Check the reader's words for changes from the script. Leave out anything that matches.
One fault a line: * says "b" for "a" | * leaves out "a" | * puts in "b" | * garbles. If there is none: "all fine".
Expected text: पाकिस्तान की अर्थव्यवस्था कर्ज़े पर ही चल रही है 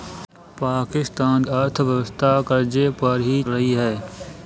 * leaves out "की"
* leaves out "चल"